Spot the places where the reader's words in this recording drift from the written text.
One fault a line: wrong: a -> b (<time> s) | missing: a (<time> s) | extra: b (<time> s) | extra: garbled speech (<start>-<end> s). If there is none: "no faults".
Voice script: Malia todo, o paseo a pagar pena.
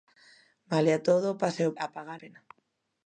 no faults